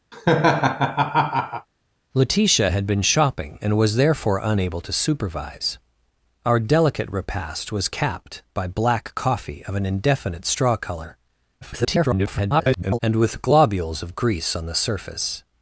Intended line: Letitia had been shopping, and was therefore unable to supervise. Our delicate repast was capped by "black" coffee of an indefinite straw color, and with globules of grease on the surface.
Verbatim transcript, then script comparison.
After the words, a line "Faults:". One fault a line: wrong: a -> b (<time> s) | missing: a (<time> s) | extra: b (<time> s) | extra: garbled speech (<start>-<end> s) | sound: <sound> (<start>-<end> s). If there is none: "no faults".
Letitia had been shopping, and was therefore unable to supervise. Our delicate repast was capped by "black" coffee of an indefinite straw color, [garbled] and with globules of grease on the surface.
Faults:
sound: laugh (0.1-1.7 s)
extra: garbled speech (11.6-13.0 s)